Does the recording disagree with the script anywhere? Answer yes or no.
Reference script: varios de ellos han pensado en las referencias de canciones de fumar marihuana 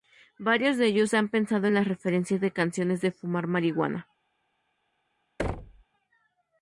no